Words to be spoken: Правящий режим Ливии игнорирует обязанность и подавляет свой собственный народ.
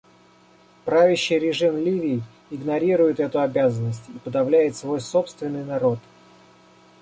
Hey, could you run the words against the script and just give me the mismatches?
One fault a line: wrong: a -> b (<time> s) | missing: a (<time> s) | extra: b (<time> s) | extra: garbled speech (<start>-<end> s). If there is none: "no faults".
extra: эту (3.2 s)